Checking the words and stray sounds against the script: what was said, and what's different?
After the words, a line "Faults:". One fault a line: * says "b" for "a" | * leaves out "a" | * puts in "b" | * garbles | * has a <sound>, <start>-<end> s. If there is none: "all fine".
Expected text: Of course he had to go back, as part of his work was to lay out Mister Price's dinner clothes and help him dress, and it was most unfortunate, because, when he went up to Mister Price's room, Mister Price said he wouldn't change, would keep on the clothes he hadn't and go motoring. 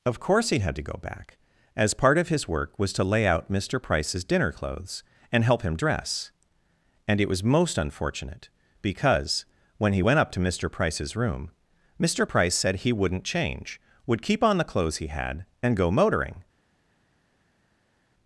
Of course he had to go back, as part of his work was to lay out Mister Price's dinner clothes and help him dress, and it was most unfortunate, because, when he went up to Mister Price's room, Mister Price said he wouldn't change, would keep on the clothes he had and go motoring.
Faults:
* says "had" for "hadn't"